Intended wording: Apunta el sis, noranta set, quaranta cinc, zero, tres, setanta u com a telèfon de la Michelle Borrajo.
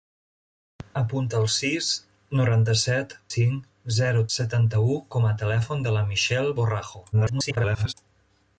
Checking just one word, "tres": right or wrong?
wrong